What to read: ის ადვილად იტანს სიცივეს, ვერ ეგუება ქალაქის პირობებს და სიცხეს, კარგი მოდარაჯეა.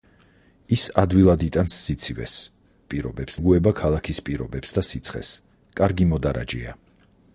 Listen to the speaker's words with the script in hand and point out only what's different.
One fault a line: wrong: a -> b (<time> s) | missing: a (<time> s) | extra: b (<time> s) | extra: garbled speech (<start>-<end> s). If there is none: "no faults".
wrong: ვერ -> პირობებს (2.9 s)